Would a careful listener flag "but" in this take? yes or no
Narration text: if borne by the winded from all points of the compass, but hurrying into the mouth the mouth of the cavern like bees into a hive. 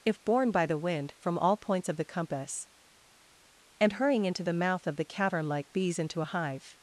yes